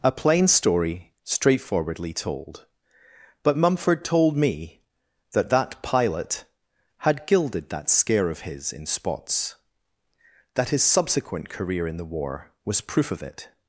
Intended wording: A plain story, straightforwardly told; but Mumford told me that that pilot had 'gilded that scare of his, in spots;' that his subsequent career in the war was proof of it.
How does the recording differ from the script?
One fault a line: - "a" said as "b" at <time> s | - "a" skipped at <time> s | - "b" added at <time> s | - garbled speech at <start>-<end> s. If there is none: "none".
none